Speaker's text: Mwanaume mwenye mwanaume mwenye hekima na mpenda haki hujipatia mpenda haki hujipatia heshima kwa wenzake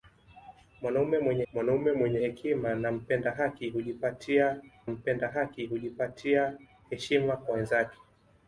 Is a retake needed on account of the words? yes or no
no